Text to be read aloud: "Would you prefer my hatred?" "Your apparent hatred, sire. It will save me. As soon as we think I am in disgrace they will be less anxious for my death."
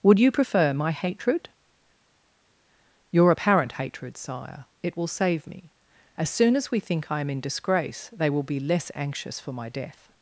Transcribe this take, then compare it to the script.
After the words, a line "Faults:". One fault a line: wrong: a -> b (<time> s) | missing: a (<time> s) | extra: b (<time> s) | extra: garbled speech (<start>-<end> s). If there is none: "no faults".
"Would you prefer my hatred?" "Your apparent hatred, sire. It will save me. As soon as we think I am in disgrace they will be less anxious for my death."
Faults:
no faults